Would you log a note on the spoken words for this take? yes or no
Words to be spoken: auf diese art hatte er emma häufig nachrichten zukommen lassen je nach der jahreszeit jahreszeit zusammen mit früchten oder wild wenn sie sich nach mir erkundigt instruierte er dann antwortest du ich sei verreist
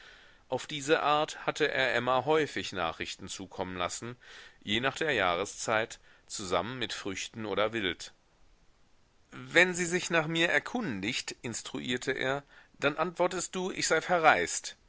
yes